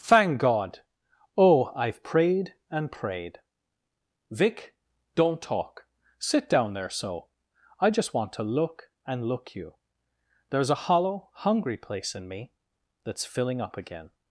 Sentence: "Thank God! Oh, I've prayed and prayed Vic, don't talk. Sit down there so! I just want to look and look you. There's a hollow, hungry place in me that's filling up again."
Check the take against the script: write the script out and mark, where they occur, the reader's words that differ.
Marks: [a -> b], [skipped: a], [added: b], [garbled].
"Thank God! Oh, I've prayed and prayed Vic, don't talk. Sit down there so! I just want to look and look you. There's a hollow, hungry place in me that's filling up again."